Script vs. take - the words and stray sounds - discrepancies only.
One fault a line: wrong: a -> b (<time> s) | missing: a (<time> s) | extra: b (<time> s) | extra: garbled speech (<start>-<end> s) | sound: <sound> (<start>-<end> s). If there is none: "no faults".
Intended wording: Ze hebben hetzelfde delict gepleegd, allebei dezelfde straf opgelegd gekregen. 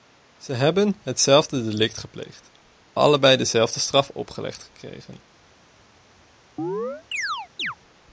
sound: chirp (6.6-7.8 s)